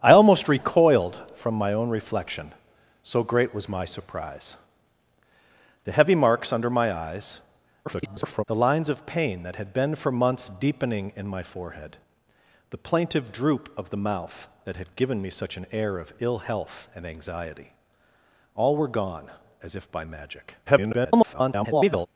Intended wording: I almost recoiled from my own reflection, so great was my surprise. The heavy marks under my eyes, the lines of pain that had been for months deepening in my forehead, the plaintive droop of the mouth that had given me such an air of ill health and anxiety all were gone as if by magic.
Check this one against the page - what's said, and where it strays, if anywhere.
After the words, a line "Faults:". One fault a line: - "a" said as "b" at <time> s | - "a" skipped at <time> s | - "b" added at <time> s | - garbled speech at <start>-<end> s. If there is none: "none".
I almost recoiled from my own reflection, so great was my surprise. The heavy marks under my eyes, [garbled] the lines of pain that had been for months deepening in my forehead, the plaintive droop of the mouth that had given me such an air of ill health and anxiety all were gone as if by magic. [garbled]
Faults:
- garbled speech at 7.8-8.4 s
- garbled speech at 20.7-22.1 s